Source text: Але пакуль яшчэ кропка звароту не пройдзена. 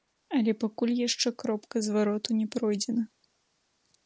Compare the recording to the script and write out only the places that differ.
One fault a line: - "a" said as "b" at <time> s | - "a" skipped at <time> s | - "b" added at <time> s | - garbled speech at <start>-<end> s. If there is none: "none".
none